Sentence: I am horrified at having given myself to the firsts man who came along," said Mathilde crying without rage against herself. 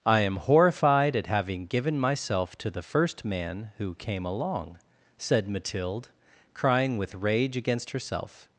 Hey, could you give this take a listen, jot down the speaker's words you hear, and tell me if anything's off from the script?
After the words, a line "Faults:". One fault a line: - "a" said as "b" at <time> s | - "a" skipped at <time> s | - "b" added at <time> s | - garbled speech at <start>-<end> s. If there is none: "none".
I am horrified at having given myself to the first man who came along," said Mathilde crying with rage against herself.
Faults:
- "firsts" said as "first" at 2.8 s
- "without" said as "with" at 7.0 s